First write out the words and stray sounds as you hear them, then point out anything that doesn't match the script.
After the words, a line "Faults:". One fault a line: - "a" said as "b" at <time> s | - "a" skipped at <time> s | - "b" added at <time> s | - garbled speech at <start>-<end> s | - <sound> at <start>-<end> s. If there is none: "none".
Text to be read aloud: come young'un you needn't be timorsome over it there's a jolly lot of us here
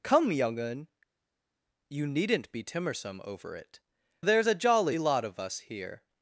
come young'un you needn't be timorsome over it there's a jolly lot of us here
Faults:
none